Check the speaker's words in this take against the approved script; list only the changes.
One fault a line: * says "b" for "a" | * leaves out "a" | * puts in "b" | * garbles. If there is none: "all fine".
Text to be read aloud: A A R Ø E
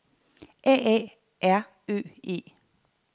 all fine